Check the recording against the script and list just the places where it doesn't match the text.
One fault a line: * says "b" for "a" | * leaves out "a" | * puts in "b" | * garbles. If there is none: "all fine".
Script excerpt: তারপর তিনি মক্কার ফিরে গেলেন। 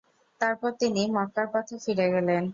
* puts in "পথে"